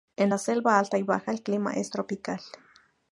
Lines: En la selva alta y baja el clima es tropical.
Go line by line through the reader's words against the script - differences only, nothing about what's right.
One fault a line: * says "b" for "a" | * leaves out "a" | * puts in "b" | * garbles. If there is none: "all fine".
all fine